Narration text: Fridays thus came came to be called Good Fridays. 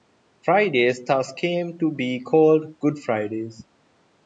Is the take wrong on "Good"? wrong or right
right